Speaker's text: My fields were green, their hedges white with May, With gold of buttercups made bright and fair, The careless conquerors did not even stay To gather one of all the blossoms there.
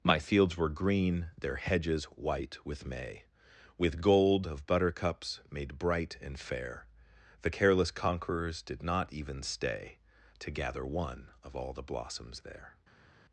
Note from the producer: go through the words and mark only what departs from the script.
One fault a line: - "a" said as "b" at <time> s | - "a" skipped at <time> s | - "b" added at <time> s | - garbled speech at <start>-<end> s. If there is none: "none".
none